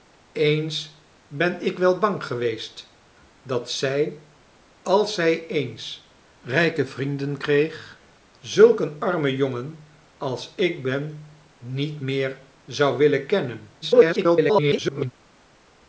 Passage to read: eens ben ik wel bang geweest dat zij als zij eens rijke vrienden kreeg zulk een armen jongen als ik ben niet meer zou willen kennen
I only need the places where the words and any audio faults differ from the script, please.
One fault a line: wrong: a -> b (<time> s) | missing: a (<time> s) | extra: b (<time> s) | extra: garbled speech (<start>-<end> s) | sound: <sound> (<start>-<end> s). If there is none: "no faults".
extra: garbled speech (13.8-15.1 s)